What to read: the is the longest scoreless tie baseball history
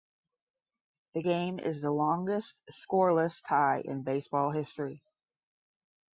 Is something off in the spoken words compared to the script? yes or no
yes